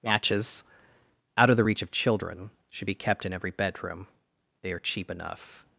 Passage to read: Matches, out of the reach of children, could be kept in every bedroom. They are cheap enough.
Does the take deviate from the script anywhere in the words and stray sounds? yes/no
yes